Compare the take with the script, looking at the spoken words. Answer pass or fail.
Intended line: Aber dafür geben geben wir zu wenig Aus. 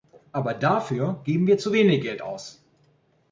fail